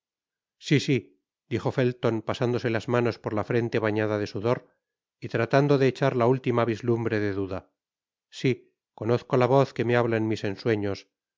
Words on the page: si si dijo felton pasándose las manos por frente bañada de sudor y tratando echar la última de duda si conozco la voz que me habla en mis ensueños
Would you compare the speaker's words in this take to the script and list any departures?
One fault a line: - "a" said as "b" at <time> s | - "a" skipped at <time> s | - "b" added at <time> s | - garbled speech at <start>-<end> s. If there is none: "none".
- "la" added at 3.3 s
- "de" added at 5.8 s
- "vislumbre" added at 6.7 s